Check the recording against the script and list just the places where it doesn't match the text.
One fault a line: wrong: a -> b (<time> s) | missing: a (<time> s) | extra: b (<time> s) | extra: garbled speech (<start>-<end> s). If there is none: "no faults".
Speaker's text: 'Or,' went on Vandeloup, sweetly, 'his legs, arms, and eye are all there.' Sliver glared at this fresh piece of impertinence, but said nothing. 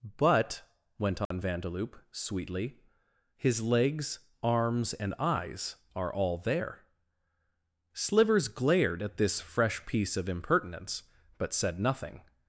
wrong: Or -> But (0.0 s)
wrong: eye -> eyes (5.2 s)
wrong: Sliver -> Slivers (7.9 s)